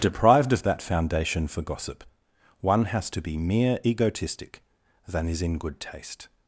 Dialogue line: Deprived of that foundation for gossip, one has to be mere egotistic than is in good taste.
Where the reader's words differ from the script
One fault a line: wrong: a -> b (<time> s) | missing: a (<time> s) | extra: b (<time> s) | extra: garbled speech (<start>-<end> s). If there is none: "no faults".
no faults